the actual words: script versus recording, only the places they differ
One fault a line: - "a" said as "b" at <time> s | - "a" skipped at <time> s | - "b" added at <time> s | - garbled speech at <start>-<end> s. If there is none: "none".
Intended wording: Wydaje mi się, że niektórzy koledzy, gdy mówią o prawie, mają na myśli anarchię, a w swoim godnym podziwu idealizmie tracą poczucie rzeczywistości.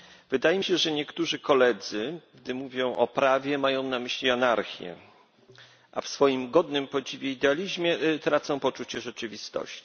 none